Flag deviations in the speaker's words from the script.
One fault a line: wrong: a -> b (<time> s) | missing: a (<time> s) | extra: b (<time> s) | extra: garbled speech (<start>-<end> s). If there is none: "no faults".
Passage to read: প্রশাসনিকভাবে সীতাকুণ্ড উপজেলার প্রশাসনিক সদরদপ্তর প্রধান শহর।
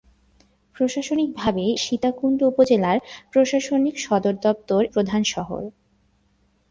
no faults